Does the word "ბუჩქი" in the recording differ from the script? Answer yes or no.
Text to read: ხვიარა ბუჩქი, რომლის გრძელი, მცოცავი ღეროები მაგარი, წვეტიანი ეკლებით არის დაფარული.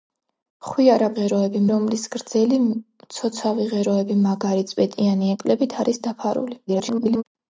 yes